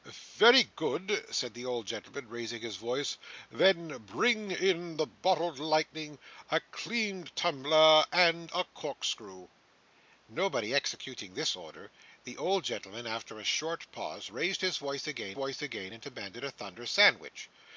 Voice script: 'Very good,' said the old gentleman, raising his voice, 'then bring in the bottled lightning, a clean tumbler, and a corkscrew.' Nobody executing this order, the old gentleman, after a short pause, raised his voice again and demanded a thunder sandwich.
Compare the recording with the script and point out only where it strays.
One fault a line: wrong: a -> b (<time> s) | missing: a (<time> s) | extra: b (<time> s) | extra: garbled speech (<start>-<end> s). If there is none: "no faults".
extra: voice again (15.3 s)